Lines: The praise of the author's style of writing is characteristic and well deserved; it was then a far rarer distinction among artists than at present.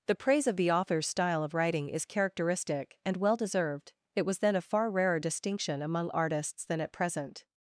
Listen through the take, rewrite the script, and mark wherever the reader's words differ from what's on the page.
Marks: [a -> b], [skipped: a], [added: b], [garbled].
The praise of the author's style of writing is characteristic and well deserved; it was then a far rarer distinction among artists than at present.